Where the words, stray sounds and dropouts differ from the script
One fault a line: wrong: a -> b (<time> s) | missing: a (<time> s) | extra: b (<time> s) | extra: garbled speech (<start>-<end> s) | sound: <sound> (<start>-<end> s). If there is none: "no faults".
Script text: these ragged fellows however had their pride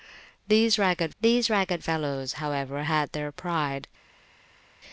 extra: these ragged (1.2 s)